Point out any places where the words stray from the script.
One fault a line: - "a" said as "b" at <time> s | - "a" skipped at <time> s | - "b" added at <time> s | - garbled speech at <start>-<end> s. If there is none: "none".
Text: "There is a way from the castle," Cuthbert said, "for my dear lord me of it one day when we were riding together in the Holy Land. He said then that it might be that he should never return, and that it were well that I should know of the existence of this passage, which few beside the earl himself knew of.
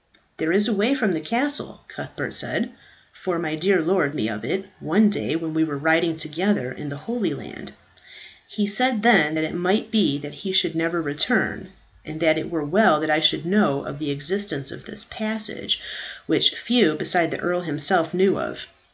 none